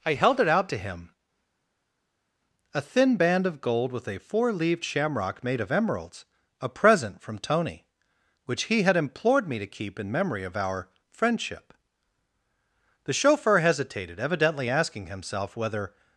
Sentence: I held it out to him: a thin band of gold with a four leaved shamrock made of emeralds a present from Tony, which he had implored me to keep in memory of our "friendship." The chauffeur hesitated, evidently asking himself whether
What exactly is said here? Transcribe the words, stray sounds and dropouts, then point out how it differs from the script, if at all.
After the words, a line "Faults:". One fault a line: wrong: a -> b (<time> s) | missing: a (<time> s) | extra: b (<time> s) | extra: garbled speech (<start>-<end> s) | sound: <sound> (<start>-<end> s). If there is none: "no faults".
I held it out to him: a thin band of gold with a four leaved shamrock made of emeralds a present from Tony, which he had implored me to keep in memory of our "friendship." The chauffeur hesitated, evidently asking himself whether
Faults:
no faults